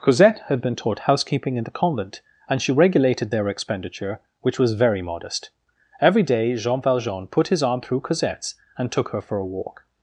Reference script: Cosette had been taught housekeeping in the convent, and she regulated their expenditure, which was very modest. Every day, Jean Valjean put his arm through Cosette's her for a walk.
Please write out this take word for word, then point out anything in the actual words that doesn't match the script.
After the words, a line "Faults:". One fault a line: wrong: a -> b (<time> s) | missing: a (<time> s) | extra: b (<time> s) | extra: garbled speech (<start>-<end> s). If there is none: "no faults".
Cosette had been taught housekeeping in the convent, and she regulated their expenditure, which was very modest. Every day, Jean Valjean put his arm through Cosette's and took her for a walk.
Faults:
extra: and took (8.8 s)